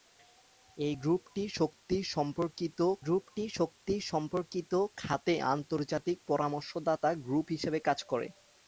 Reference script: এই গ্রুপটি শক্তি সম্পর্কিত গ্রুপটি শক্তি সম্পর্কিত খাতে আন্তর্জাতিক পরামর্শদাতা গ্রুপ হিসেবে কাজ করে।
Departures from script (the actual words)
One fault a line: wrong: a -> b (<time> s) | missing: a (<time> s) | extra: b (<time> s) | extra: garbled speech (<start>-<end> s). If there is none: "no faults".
no faults